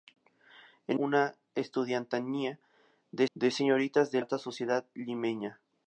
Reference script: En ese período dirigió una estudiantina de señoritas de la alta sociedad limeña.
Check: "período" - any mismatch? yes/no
yes